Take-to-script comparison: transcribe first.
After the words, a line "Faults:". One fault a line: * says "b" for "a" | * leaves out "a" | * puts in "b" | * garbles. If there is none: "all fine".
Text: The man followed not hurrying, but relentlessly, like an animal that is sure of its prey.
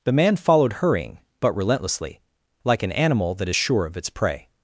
The man followed hurrying, but relentlessly, like an animal that is sure of its prey.
Faults:
* leaves out "not"